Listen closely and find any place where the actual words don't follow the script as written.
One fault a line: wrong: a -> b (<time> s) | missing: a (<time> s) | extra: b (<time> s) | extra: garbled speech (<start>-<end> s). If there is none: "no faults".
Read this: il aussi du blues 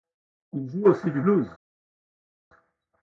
extra: joue (0.7 s)